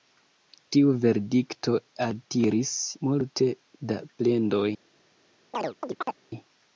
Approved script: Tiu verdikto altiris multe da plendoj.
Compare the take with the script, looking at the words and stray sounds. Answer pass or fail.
fail